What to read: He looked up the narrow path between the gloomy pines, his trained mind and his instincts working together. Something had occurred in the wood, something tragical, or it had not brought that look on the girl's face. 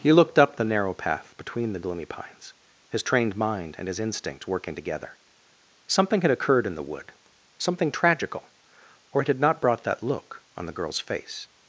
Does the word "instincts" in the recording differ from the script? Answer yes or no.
yes